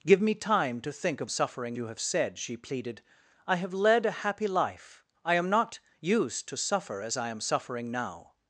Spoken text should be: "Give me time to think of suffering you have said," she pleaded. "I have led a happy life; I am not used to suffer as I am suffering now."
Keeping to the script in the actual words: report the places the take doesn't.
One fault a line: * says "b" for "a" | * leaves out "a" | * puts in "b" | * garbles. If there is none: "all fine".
all fine